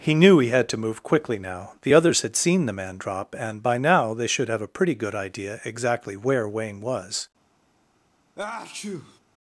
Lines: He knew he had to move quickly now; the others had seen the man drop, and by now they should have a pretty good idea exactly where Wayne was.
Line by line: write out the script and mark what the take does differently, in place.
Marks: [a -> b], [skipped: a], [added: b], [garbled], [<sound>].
He knew he had to move quickly now; the others had seen the man drop, and by now they should have a pretty good idea exactly where Wayne was. [sneeze]